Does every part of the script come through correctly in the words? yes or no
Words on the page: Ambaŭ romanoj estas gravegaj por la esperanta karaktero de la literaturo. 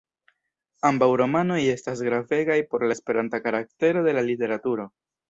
yes